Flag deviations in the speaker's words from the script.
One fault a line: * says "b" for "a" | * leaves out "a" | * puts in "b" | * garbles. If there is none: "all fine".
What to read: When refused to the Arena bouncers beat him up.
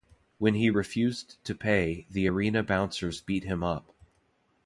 * puts in "he"
* puts in "pay"